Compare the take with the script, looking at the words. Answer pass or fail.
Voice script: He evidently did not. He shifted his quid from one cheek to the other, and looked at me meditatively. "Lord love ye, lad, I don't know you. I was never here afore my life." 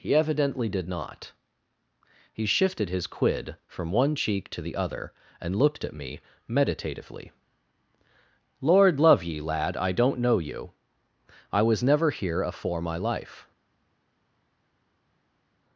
pass